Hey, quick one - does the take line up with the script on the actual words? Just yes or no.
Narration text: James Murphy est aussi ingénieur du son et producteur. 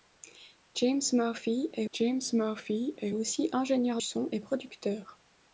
no